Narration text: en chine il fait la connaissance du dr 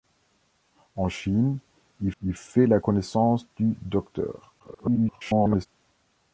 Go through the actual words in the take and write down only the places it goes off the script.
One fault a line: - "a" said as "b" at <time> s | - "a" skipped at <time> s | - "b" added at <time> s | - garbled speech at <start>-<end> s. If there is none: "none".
- "il" added at 2.2 s
- garbled speech at 4.6-5.7 s